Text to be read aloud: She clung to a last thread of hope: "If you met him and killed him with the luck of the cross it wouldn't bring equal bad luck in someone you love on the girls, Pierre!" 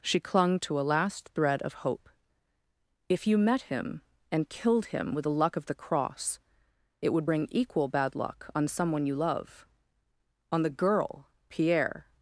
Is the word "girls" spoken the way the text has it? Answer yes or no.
no